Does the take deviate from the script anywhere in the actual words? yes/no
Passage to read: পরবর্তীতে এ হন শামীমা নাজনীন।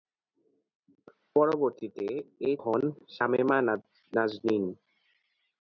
no